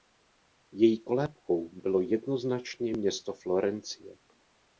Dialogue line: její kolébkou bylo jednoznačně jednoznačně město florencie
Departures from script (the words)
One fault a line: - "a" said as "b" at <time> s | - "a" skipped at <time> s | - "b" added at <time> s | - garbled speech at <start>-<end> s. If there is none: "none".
- "jednoznačně" skipped at 2.9 s